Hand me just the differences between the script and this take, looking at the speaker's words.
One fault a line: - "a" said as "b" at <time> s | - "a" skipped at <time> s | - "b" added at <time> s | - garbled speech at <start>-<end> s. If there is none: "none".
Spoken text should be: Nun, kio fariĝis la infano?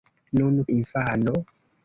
- "kio fariĝis la" skipped at 0.6 s